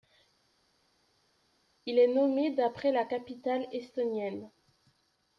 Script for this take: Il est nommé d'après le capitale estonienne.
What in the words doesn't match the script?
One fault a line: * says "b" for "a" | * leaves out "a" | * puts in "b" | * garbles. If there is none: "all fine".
* says "la" for "le"